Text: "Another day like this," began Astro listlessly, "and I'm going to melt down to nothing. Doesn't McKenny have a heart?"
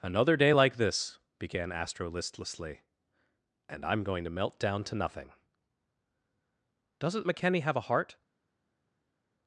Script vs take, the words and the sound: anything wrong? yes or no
no